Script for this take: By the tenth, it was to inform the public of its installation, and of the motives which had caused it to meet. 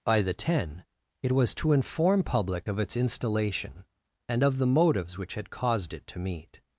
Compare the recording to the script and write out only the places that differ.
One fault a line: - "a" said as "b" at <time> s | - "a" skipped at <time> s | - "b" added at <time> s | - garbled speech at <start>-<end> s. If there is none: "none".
- "tenth" said as "ten" at 0.3 s
- "the" skipped at 2.2 s